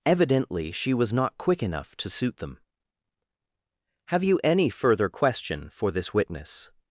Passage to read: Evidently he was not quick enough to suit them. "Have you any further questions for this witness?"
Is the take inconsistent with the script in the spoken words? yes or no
yes